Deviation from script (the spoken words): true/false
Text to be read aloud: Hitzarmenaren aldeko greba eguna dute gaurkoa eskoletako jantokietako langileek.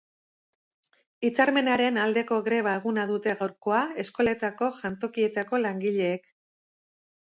false